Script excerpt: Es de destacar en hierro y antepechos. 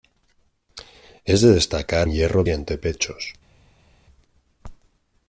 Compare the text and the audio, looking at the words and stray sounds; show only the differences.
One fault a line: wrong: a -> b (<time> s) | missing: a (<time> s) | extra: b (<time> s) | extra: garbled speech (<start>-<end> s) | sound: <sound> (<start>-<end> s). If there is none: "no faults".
no faults